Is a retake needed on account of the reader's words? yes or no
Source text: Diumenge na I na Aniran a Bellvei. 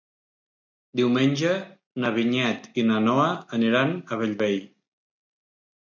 yes